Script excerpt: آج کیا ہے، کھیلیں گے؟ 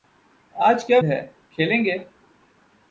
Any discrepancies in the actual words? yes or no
no